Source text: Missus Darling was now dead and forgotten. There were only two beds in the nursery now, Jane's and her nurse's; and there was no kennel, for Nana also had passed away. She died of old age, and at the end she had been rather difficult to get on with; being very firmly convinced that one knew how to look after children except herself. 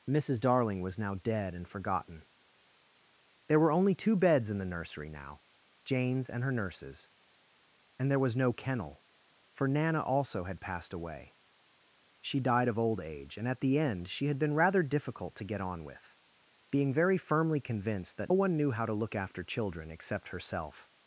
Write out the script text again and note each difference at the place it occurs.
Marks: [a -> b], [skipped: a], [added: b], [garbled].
Missus Darling was now dead and forgotten. There were only two beds in the nursery now, Jane's and her nurse's; and there was no kennel, for Nana also had passed away. She died of old age, and at the end she had been rather difficult to get on with; being very firmly convinced that one knew how to look after children except herself.